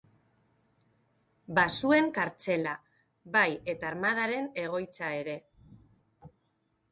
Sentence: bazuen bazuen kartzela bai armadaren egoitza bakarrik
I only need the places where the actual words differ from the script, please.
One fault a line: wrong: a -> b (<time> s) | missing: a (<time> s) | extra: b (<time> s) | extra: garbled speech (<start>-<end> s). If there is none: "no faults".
missing: bazuen (2.1 s)
extra: eta (3.8 s)
wrong: bakarrik -> ere (5.2 s)